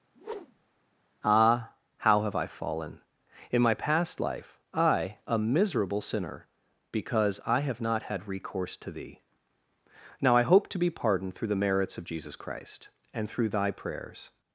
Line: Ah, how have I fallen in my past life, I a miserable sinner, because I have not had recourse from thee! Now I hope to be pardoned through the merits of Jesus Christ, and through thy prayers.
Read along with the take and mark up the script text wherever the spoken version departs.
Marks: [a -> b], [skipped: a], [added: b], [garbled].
Ah, how have I fallen in my past life, I a miserable sinner, because I have not had recourse [from -> to] thee! Now I hope to be pardoned through the merits of Jesus Christ, and through thy prayers.